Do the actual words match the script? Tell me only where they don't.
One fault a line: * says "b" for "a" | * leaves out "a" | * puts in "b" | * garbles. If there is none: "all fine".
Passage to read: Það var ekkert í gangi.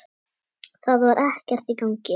all fine